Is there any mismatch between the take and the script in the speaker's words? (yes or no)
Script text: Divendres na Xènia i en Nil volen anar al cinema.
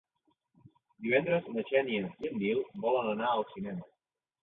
no